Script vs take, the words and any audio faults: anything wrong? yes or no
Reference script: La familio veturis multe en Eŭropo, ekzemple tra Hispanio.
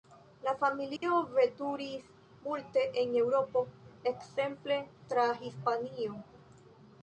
yes